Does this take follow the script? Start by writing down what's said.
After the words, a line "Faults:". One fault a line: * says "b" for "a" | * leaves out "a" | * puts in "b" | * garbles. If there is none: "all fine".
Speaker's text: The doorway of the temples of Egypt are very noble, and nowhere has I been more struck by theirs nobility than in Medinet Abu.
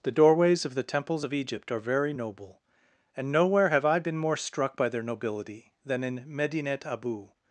The doorways of the temples of Egypt are very noble, and nowhere have I been more struck by their nobility than in Medinet Abu.
Faults:
* says "doorways" for "doorway"
* says "have" for "has"
* says "their" for "theirs"